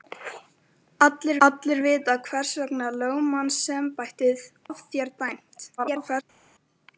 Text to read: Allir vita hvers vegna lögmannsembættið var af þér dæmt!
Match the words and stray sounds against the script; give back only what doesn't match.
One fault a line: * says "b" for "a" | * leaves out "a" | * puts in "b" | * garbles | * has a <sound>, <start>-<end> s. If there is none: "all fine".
* puts in "allir"
* leaves out "var"
* garbles